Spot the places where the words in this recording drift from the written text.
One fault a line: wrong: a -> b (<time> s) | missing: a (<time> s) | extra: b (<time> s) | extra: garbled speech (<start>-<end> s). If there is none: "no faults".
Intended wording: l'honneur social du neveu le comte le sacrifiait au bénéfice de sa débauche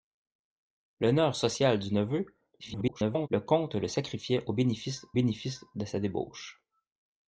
extra: garbled speech (2.6-3.3 s)
extra: bénéfice (5.1 s)